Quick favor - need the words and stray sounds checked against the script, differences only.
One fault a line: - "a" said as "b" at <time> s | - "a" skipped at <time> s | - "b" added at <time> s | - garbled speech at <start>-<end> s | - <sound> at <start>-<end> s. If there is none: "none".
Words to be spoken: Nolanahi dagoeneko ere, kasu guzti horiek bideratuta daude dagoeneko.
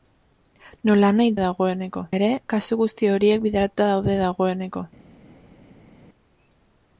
none